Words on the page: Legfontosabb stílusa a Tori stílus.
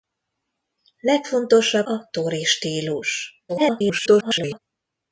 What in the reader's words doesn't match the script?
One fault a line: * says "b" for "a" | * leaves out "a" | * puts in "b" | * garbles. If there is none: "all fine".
* leaves out "stílusa"
* garbles